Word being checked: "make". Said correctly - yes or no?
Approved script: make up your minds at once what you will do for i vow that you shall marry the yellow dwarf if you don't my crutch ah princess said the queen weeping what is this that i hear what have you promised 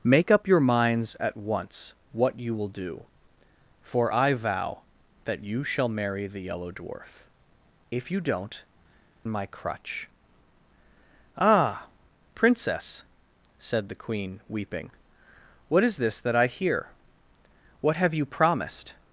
yes